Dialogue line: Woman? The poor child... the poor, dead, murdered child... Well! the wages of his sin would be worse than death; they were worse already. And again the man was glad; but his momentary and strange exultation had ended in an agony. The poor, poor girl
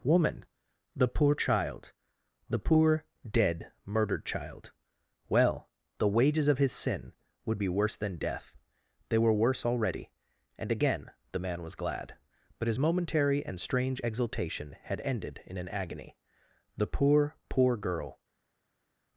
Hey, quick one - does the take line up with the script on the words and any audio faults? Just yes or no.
yes